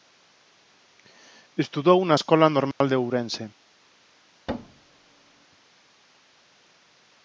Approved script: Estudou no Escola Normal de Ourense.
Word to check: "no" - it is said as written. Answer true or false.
false